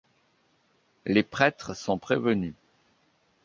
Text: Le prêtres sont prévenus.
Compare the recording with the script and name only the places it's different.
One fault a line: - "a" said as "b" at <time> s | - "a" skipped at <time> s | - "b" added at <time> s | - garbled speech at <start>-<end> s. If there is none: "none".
- "Le" said as "Les" at 1.1 s